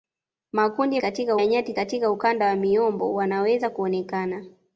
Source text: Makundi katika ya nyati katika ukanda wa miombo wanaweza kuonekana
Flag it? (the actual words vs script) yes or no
no